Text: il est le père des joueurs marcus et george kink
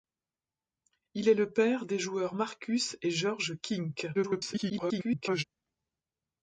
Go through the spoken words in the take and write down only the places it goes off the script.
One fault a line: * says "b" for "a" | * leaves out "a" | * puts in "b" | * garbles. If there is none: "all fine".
* garbles